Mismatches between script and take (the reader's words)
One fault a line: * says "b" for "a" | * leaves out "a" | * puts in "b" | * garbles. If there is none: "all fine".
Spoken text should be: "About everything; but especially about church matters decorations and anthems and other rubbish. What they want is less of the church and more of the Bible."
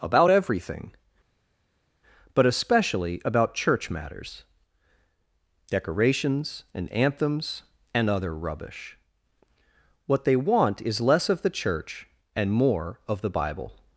all fine